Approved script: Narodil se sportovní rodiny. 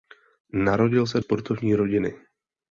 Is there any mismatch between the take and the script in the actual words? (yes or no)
no